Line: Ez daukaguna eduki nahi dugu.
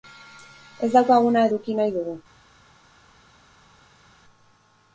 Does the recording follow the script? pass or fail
pass